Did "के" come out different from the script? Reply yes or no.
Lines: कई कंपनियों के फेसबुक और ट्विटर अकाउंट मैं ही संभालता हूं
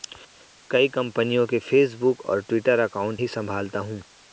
no